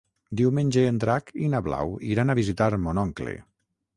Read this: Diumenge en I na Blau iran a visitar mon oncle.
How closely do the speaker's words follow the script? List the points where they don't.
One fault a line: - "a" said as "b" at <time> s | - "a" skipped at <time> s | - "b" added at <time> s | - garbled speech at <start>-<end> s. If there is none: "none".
- "Drac" added at 1.0 s